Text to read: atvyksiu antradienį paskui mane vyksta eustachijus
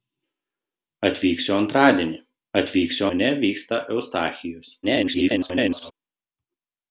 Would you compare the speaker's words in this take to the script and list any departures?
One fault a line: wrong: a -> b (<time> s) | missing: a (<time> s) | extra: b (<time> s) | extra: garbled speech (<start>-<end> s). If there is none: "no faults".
wrong: paskui -> atvyksiu (2.6 s)
extra: garbled speech (4.8-5.9 s)